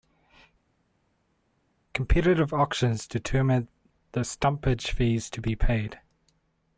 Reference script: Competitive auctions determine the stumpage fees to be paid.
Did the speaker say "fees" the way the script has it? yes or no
yes